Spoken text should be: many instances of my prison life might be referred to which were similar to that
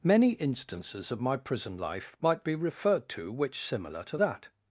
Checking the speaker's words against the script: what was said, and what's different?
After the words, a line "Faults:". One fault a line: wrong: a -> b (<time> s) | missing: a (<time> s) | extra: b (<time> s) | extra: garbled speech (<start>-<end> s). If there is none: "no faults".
many instances of my prison life might be referred to which similar to that
Faults:
missing: were (3.6 s)